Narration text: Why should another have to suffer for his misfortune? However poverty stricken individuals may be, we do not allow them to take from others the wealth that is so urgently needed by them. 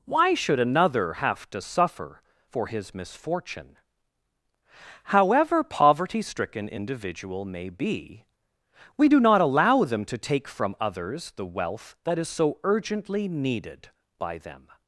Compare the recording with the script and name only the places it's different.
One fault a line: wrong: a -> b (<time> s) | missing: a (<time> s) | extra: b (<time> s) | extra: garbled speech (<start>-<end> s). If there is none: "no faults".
wrong: individuals -> individual (6.7 s)